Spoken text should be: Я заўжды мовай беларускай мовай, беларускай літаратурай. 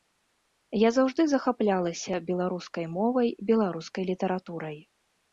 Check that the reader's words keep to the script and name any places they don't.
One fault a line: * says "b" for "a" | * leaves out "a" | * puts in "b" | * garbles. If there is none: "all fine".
* says "захаплялася" for "мовай"